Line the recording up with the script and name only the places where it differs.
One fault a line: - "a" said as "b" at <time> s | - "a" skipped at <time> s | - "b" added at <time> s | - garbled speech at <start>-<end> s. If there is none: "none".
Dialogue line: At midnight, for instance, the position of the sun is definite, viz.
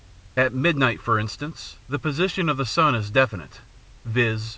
none